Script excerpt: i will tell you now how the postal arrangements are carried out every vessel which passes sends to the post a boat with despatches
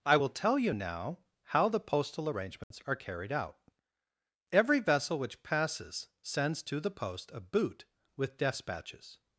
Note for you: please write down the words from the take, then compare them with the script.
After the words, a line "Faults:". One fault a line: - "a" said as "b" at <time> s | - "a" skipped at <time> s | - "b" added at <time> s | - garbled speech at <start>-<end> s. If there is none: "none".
i will tell you now how the postal arrangements are carried out every vessel which passes sends to the post a boot with despatches
Faults:
- "boat" said as "boot" at 7.4 s